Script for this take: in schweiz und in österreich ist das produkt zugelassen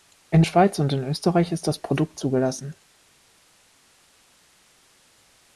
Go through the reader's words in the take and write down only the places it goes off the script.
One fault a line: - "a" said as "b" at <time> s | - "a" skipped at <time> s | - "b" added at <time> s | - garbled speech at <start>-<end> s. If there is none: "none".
none